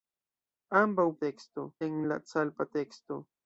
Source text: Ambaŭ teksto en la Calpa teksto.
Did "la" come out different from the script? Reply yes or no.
no